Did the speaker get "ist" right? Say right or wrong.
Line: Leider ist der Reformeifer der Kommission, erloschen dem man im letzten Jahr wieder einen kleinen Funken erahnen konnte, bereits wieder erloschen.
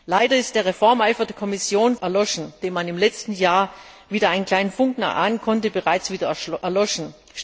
right